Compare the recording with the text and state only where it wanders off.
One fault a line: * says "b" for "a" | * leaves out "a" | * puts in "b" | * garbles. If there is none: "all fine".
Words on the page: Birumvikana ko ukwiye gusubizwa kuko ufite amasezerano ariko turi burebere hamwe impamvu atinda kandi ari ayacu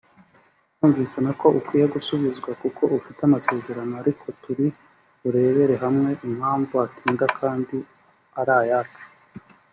all fine